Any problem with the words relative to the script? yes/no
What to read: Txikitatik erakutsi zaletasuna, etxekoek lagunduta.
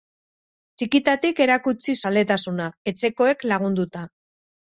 no